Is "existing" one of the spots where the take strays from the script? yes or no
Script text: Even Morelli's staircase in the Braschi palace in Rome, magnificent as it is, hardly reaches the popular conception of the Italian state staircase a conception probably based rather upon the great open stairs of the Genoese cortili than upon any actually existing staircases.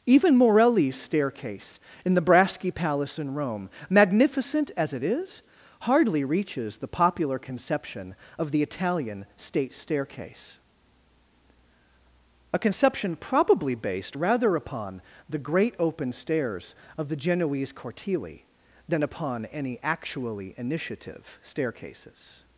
yes